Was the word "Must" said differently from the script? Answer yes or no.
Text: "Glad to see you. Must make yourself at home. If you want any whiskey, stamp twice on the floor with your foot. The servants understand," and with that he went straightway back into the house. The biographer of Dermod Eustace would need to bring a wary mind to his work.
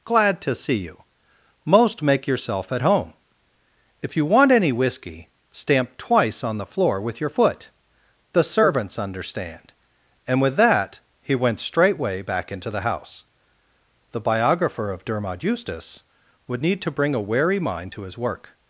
yes